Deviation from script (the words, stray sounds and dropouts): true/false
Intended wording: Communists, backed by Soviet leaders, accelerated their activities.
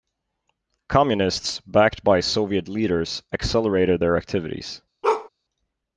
true